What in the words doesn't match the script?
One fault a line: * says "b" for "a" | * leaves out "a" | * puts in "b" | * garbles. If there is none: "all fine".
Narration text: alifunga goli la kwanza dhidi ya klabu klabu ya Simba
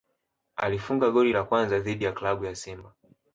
* leaves out "klabu"